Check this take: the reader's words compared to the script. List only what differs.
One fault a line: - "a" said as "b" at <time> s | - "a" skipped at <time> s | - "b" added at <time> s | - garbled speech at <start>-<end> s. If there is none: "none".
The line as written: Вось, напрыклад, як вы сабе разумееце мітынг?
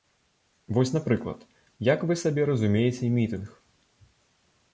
none